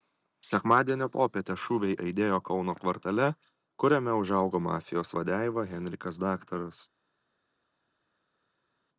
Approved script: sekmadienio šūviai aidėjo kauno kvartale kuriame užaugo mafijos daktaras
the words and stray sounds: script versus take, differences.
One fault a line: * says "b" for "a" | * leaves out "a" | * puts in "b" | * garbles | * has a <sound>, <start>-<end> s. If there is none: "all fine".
* puts in "popietę"
* puts in "vadeiva henrikas"